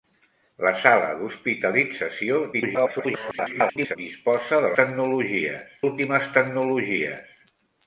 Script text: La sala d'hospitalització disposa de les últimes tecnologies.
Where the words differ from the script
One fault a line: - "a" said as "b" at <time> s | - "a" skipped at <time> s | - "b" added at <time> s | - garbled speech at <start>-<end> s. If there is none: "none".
- garbled speech at 2.5-4.0 s
- "les" said as "tecnologies" at 4.8 s